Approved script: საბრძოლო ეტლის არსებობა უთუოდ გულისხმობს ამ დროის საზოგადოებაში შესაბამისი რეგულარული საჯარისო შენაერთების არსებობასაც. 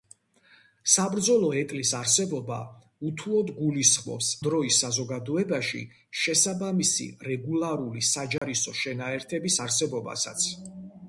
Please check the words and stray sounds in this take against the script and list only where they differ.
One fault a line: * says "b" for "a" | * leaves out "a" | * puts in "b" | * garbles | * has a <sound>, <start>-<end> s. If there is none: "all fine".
* leaves out "ამ"
* has a dropout, 8.4-8.4 s